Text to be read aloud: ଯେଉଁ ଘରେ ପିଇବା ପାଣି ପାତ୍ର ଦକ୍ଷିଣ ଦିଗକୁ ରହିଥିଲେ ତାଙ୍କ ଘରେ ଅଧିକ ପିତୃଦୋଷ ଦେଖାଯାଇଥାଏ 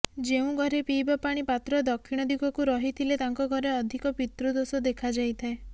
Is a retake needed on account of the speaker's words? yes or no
no